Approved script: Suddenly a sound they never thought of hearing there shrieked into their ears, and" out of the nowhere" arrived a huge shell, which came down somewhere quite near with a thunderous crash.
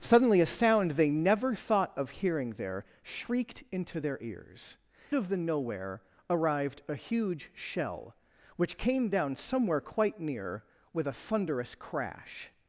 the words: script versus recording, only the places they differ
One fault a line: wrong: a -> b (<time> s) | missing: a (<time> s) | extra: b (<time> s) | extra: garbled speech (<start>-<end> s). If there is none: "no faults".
missing: and out (4.8 s)